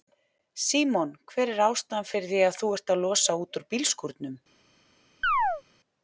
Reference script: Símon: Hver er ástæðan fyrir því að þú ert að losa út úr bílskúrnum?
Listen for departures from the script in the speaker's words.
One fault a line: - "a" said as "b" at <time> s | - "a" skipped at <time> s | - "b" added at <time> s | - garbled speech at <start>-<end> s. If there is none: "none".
none